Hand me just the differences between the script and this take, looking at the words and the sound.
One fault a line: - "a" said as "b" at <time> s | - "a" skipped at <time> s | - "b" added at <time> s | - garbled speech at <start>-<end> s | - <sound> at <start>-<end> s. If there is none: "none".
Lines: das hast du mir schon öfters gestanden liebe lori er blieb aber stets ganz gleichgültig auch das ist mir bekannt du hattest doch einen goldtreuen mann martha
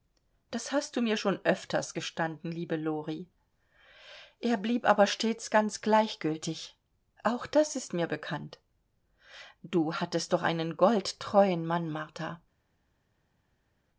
none